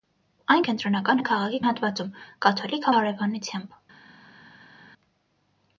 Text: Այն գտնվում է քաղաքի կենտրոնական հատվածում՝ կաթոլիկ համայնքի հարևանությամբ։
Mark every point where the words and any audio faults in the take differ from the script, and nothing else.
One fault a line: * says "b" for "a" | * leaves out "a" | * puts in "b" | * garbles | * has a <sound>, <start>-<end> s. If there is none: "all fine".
* says "կենտրոնական" for "գտնվում"
* leaves out "կենտրոնական"
* leaves out "համայնքի"